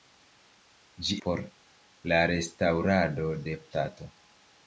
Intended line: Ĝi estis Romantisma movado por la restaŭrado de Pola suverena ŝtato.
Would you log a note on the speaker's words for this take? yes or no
yes